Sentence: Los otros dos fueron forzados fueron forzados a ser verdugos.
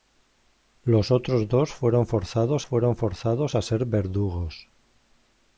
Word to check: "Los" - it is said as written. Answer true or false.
true